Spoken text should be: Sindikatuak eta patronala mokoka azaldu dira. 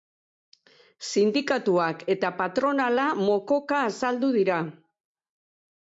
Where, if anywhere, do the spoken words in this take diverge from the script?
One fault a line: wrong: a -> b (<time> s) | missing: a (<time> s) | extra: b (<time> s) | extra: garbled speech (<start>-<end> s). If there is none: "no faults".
no faults